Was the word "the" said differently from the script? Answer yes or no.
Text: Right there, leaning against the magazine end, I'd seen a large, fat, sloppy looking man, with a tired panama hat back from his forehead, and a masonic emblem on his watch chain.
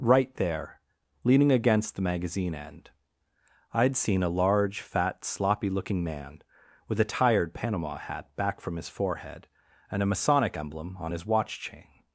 no